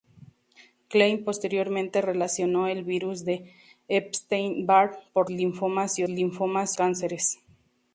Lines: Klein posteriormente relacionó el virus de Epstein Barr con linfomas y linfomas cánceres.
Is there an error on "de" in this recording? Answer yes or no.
no